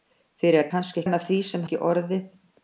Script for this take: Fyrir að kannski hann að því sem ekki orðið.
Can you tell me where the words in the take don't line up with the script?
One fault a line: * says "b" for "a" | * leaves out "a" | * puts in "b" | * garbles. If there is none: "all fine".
all fine